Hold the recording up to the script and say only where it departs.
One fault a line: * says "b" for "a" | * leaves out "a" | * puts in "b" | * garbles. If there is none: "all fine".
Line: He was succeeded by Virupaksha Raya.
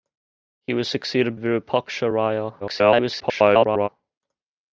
* leaves out "by"
* garbles